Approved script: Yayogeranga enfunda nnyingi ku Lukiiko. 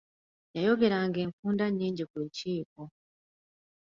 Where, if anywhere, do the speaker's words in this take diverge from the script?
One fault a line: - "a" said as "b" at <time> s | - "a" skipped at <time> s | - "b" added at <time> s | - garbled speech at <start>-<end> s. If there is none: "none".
none